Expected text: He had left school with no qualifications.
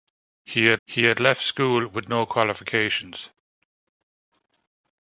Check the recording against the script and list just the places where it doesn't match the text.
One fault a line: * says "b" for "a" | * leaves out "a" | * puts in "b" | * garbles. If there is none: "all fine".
* puts in "he had"